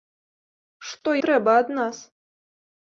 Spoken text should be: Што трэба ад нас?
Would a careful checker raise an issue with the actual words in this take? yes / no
no